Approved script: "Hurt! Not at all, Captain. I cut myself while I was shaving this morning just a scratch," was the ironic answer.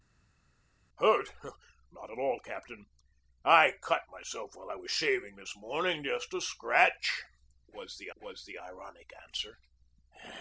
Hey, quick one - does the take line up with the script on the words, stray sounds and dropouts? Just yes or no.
no